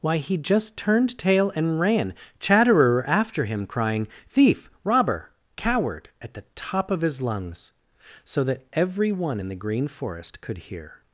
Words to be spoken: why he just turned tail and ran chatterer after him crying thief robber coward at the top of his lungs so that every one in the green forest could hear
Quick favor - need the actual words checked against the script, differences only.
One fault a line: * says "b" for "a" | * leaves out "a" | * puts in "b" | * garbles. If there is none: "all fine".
all fine